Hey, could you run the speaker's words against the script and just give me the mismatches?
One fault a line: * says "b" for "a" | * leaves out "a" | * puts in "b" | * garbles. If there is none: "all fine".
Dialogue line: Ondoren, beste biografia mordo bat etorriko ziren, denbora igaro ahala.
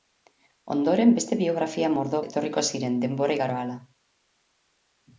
* leaves out "bat"